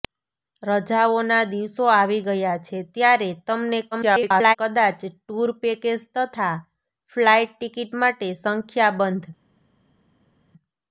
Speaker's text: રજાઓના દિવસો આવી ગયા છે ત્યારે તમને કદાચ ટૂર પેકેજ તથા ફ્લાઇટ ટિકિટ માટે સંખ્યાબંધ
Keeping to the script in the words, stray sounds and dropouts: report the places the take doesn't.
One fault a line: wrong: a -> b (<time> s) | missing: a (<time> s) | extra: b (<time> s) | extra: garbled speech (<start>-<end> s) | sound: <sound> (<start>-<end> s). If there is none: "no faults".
extra: garbled speech (3.9-4.6 s)